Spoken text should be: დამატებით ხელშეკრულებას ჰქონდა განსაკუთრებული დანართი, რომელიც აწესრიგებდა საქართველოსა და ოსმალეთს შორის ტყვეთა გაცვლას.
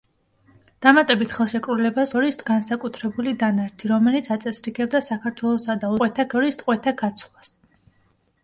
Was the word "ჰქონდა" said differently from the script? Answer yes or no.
yes